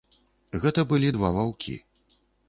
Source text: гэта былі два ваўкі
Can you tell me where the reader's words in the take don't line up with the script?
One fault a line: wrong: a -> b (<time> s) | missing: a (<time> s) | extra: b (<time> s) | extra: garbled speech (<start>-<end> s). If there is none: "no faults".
no faults